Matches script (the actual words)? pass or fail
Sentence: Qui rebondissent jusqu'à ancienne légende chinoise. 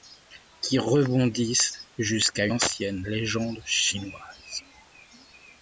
pass